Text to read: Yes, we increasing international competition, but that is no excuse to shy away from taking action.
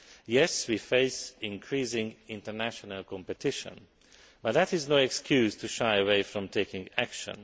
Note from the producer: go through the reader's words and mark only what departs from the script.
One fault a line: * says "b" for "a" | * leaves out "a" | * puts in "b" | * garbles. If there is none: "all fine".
* puts in "face"